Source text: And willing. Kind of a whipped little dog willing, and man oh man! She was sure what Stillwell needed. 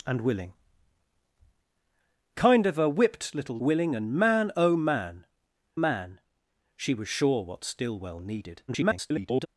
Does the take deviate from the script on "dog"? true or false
true